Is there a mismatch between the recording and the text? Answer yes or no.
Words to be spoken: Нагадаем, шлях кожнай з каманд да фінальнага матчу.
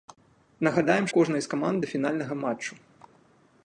yes